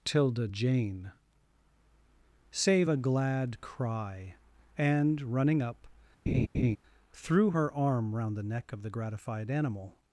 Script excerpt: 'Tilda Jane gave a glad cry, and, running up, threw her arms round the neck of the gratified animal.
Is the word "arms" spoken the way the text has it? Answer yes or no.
no